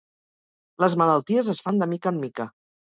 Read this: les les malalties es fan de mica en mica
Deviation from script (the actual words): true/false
true